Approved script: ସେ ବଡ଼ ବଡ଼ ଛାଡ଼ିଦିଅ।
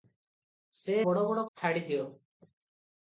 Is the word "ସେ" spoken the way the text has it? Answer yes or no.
yes